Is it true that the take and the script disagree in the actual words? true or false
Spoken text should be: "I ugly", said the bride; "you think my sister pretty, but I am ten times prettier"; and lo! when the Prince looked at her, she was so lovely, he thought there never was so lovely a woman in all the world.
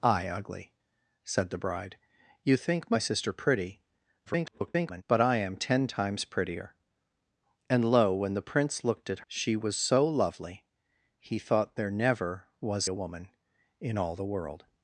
true